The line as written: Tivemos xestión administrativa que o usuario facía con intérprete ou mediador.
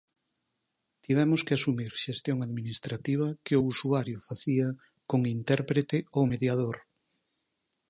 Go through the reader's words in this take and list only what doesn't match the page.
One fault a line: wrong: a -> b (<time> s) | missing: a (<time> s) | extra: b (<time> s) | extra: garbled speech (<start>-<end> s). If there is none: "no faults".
extra: que asumir (1.4 s)